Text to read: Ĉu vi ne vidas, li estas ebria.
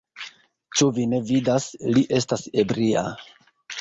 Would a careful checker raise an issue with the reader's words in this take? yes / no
no